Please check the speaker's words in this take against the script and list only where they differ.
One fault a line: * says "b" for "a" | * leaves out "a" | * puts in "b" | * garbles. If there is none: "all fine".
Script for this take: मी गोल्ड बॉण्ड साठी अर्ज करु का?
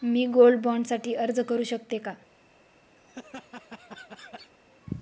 * puts in "शकते"